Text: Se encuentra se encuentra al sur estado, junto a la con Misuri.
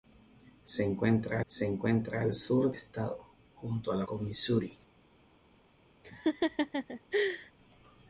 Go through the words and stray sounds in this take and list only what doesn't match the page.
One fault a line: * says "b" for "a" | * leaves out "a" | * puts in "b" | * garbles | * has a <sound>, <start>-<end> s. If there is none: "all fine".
* has a laugh, 6.0-7.5 s